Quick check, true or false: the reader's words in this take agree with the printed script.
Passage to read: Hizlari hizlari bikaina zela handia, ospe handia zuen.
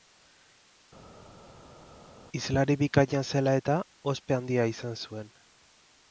false